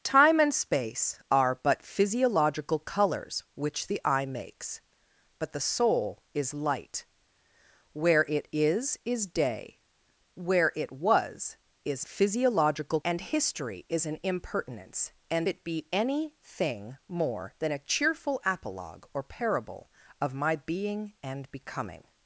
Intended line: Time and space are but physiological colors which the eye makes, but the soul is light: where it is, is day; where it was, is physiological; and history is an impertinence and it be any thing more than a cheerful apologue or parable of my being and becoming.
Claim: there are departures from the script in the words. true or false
false